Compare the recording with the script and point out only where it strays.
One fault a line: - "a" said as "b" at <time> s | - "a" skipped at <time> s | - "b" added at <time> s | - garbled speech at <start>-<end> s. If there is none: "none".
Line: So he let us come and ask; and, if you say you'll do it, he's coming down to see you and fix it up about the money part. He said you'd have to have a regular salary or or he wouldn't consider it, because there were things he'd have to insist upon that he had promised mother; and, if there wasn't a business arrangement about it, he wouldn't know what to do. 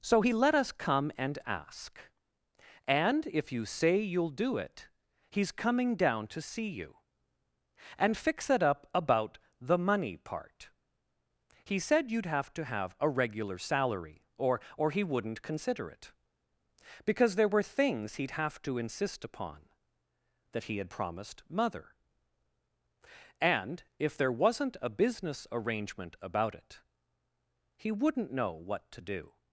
none